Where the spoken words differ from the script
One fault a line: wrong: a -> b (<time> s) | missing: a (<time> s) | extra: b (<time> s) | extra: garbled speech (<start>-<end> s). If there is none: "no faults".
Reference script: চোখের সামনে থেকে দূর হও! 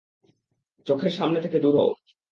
no faults